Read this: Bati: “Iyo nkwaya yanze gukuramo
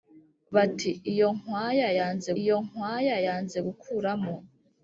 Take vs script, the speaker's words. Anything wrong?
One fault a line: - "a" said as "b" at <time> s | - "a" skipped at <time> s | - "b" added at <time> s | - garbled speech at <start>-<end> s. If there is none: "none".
- "iyo nkwaya yanze" added at 2.4 s